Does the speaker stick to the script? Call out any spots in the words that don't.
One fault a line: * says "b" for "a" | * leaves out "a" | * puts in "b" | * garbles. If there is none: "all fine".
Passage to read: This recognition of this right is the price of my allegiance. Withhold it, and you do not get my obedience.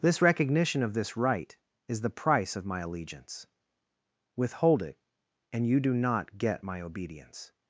all fine